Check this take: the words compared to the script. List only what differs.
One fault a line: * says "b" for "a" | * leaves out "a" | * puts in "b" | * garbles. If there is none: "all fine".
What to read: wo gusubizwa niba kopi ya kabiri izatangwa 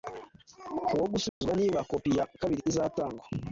all fine